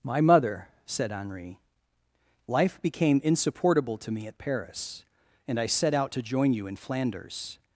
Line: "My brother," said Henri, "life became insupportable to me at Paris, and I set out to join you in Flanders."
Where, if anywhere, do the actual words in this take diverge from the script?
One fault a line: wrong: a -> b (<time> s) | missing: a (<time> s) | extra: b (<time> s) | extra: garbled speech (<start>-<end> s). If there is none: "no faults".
wrong: brother -> mother (0.2 s)